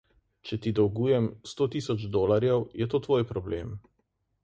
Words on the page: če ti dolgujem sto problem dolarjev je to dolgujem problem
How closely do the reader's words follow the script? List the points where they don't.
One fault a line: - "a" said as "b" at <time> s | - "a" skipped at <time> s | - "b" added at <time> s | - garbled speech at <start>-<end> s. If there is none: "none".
- "problem" said as "tisoč" at 1.8 s
- "dolgujem" said as "tvoj" at 3.1 s